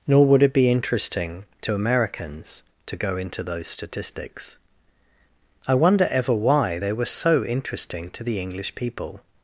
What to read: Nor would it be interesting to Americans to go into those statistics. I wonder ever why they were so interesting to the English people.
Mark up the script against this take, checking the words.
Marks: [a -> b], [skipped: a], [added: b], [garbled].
Nor would it be interesting to Americans to go into those statistics. I wonder ever why they were so interesting to the English people.